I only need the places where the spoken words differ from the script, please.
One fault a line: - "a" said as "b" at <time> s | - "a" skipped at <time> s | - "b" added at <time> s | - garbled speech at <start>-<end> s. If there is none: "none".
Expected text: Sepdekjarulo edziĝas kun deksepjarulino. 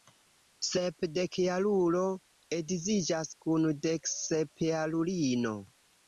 none